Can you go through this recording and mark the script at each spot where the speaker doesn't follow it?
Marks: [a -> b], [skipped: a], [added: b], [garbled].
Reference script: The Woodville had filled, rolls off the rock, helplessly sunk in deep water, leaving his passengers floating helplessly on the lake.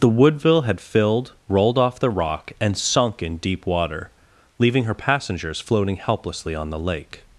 The Woodville had filled, [rolls -> rolled] off the rock, [helplessly -> and] sunk in deep water, leaving [his -> her] passengers floating helplessly on the lake.